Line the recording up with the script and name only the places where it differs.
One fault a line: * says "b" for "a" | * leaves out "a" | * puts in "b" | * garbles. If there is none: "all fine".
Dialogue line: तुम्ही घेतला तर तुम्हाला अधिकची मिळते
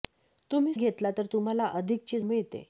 all fine